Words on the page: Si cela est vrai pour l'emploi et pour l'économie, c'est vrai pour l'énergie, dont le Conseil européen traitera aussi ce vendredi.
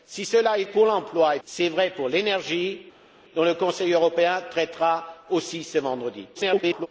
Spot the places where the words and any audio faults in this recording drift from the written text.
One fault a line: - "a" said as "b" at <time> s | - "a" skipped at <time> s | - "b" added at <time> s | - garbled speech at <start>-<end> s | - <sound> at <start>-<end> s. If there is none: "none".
- "vrai" skipped at 0.6 s
- "pour l'économie" skipped at 1.4 s
- garbled speech at 6.3-6.9 s